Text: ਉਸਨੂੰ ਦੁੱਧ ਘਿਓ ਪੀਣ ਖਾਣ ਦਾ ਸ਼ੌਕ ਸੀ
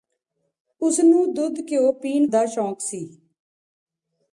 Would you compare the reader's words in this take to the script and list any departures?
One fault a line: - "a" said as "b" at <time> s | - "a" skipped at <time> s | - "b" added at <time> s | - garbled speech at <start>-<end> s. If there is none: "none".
- "ਖਾਣ" skipped at 2.3 s